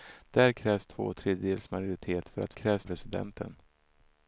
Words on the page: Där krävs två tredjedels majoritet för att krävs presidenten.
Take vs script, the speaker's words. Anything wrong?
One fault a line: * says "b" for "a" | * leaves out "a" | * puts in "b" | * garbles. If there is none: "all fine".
all fine